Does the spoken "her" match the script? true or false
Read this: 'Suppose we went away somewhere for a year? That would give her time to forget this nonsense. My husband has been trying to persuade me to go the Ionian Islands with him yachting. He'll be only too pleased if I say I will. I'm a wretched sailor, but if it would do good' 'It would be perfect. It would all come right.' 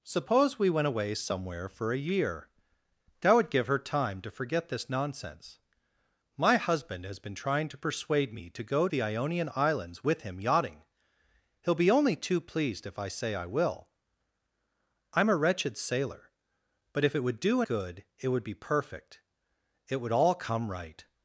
true